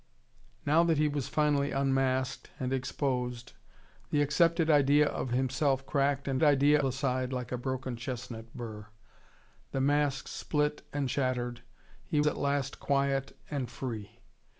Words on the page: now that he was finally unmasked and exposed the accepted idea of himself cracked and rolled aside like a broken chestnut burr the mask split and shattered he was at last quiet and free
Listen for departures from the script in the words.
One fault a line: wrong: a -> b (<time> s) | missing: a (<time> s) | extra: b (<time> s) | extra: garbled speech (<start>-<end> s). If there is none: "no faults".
wrong: rolled -> idea (6.4 s)
missing: was (12.2 s)